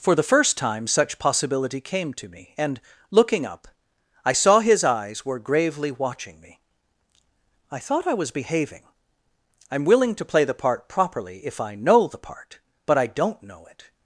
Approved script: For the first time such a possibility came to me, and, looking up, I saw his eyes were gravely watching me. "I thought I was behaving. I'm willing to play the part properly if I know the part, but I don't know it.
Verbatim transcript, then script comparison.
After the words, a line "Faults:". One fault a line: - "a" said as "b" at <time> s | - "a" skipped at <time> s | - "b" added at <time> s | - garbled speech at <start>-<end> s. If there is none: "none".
For the first time such possibility came to me, and, looking up, I saw his eyes were gravely watching me. "I thought I was behaving. I'm willing to play the part properly if I know the part, but I don't know it.
Faults:
- "a" skipped at 1.2 s